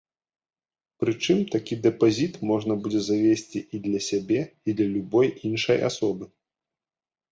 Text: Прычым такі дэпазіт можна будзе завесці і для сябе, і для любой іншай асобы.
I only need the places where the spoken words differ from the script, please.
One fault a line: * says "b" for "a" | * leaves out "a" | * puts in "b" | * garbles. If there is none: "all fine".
all fine